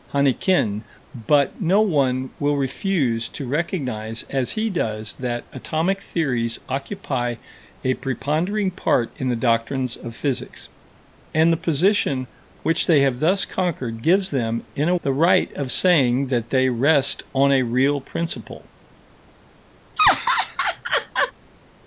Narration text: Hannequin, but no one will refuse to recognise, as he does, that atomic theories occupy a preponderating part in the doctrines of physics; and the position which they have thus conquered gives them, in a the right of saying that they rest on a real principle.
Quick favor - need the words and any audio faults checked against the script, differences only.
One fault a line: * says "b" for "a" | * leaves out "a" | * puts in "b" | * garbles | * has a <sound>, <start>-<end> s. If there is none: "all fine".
* has a laugh, 20.0-21.3 s